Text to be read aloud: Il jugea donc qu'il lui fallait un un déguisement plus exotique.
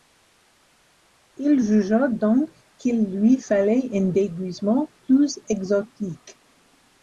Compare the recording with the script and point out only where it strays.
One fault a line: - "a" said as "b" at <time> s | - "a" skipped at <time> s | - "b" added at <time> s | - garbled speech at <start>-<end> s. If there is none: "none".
- "un" skipped at 4.0 s